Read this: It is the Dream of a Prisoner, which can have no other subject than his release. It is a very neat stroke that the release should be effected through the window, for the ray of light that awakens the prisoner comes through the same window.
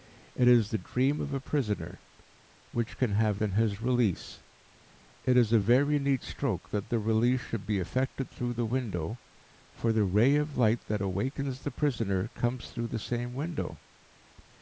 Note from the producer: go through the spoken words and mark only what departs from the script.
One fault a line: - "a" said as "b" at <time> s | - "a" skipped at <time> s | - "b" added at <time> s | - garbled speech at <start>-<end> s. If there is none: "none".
- "no other subject" skipped at 3.4 s